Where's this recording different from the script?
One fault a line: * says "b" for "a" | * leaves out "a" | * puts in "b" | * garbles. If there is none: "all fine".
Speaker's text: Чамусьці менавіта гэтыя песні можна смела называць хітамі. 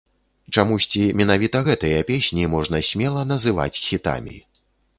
all fine